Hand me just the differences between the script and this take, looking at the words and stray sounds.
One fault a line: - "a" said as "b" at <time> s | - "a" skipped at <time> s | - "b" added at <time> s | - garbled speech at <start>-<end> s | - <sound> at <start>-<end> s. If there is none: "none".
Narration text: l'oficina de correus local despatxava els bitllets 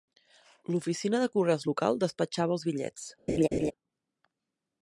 - laugh at 3.3-3.7 s